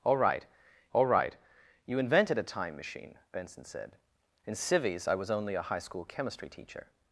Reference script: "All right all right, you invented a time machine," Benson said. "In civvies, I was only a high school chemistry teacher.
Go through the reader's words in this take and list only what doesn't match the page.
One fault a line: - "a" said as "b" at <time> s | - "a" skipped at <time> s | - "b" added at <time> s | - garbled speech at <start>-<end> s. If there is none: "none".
none